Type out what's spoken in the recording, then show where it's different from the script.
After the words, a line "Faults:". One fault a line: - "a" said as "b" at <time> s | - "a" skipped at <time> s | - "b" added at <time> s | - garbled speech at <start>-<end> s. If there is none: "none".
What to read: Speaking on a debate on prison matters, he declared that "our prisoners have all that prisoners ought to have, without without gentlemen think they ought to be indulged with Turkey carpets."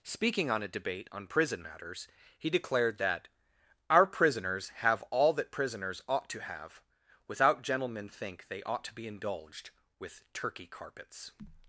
Speaking on a debate on prison matters, he declared that "our prisoners have all that prisoners ought to have, without gentlemen think they ought to be indulged with Turkey carpets."
Faults:
- "without" skipped at 7.6 s